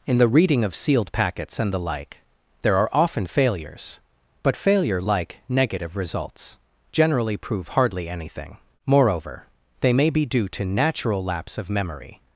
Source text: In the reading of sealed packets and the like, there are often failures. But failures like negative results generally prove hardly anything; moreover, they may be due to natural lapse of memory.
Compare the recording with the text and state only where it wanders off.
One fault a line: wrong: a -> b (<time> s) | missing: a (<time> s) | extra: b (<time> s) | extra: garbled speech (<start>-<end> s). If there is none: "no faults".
wrong: failures -> failure (4.5 s)